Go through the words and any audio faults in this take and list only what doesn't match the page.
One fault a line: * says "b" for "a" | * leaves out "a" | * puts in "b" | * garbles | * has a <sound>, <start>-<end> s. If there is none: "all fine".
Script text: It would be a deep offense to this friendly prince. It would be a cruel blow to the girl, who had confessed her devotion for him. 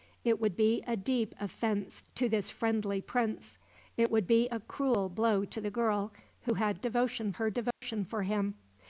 * says "devotion" for "confessed"
* has a dropout, 7.7-7.8 s